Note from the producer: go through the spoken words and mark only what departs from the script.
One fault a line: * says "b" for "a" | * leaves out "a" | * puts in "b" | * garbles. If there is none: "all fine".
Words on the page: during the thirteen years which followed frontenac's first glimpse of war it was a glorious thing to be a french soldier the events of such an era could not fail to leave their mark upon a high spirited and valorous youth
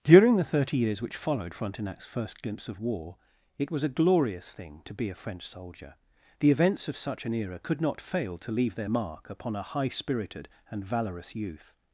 * says "thirty" for "thirteen"